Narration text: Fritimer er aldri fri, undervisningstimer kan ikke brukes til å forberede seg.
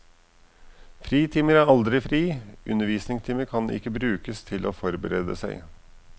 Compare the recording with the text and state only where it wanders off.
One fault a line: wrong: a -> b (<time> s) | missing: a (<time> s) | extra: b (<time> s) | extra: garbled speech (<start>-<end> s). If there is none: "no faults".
no faults